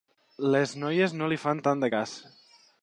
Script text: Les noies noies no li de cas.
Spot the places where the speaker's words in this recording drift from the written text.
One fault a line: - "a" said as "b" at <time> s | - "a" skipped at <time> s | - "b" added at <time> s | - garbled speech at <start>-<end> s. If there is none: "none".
- "noies" skipped at 1.1 s
- "fan tant" added at 1.4 s